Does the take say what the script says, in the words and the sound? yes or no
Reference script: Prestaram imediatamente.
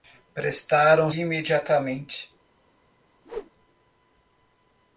no